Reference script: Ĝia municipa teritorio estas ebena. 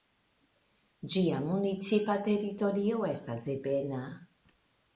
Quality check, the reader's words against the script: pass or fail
pass